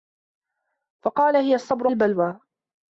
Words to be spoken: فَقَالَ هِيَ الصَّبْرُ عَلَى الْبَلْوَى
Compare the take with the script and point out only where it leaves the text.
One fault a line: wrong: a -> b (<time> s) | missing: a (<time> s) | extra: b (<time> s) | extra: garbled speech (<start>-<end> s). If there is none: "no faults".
missing: عَلَى (1.9 s)